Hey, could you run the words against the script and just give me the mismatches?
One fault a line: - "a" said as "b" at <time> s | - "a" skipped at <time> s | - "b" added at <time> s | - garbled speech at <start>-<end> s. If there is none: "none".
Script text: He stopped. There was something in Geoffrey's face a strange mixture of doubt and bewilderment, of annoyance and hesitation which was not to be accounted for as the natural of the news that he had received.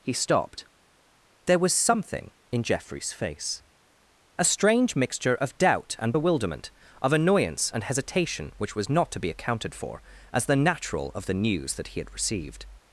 none